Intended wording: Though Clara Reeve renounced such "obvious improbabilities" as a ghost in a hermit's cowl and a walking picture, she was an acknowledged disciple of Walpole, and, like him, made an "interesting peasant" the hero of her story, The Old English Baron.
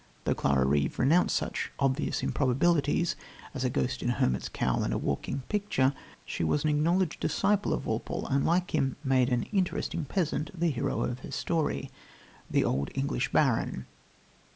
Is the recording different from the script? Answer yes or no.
no